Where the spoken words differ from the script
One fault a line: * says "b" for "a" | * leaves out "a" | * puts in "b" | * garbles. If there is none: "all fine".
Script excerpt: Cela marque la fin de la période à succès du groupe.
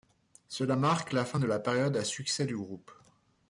all fine